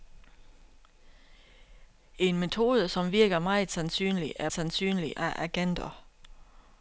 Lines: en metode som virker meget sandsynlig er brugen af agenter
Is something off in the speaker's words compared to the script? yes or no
yes